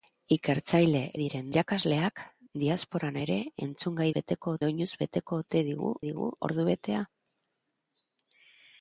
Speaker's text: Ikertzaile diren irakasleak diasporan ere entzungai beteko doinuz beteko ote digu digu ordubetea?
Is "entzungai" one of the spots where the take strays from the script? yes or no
no